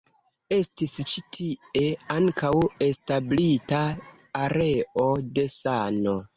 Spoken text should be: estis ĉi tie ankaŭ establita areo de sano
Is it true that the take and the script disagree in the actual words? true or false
false